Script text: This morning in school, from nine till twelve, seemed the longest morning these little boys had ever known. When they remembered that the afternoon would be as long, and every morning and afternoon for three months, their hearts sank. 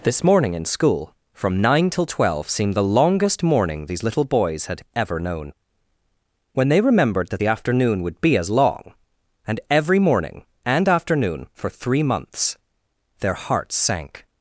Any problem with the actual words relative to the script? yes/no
no